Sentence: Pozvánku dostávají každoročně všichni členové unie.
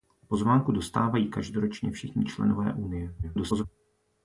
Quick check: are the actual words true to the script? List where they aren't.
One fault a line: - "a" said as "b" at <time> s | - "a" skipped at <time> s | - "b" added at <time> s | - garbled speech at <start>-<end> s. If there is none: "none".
- garbled speech at 3.2-3.7 s